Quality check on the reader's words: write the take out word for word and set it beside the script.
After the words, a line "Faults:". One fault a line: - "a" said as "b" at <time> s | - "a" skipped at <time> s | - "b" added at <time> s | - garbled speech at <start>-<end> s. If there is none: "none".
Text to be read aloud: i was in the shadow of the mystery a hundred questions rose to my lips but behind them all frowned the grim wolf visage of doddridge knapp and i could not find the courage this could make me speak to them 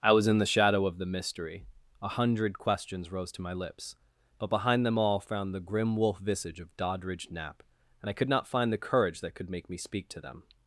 i was in the shadow of the mystery a hundred questions rose to my lips but behind them all frowned the grim wolf visage of doddridge knapp and i could not find the courage that could make me speak to them
Faults:
- "this" said as "that" at 9.2 s